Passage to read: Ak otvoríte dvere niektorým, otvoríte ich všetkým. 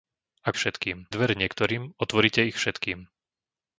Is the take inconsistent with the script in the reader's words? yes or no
yes